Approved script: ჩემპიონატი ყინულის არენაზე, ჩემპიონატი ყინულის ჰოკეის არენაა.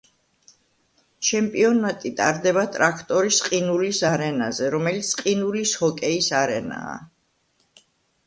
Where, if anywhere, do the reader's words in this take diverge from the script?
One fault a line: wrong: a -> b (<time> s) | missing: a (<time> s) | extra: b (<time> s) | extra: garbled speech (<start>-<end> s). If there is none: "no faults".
extra: ტარდება ტრაქტორის (2.2 s)
wrong: ჩემპიონატი -> რომელიც (4.7 s)